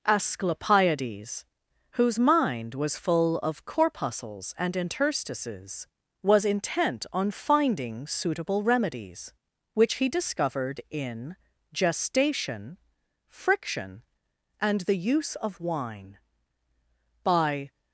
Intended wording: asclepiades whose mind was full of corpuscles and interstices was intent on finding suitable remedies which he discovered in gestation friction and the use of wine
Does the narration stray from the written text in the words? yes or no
yes